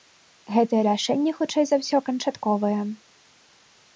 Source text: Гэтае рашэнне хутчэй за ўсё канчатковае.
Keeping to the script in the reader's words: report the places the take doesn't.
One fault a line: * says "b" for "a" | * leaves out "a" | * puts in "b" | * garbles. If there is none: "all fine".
all fine